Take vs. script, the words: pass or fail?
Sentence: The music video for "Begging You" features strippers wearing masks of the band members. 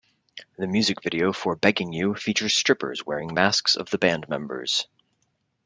pass